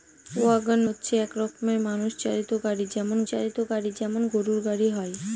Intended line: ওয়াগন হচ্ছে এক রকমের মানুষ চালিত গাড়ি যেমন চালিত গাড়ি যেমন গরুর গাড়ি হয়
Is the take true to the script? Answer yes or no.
yes